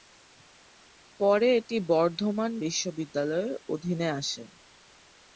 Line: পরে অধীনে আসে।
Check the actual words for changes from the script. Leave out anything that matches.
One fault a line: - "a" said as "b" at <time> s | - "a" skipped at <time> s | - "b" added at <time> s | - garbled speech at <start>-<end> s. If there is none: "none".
- "এটি বর্ধমান বিশ্ববিদ্যালয়ের" added at 1.6 s